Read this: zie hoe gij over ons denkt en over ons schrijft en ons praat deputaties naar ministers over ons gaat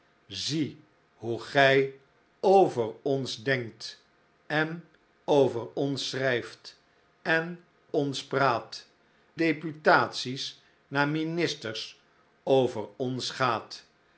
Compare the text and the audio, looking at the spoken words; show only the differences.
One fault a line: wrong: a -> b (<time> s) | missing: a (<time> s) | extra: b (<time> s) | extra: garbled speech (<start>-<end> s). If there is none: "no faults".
no faults